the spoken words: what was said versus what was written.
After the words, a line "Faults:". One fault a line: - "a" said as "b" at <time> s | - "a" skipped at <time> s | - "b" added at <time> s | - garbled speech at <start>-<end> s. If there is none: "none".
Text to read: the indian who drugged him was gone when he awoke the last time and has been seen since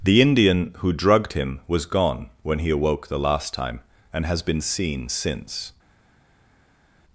the indian who drugged him was gone when he awoke the last time and has been seen since
Faults:
none